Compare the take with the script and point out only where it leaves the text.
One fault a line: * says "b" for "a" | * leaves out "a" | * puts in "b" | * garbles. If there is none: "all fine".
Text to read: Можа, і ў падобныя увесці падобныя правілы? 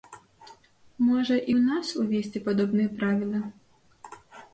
* says "нас" for "падобныя"